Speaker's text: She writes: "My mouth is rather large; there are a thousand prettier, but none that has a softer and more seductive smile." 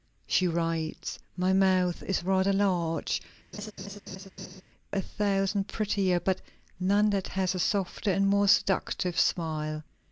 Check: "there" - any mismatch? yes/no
yes